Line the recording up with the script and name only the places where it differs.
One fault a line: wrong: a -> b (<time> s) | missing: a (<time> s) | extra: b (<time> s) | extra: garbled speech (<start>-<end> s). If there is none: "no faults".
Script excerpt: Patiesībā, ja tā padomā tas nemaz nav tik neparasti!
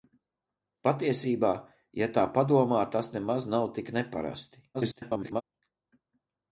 extra: garbled speech (4.7-5.4 s)